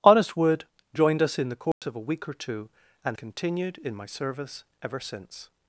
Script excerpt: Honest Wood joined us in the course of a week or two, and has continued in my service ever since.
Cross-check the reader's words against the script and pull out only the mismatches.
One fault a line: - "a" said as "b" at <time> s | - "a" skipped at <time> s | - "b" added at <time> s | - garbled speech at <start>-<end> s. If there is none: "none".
- "has" skipped at 3.2 s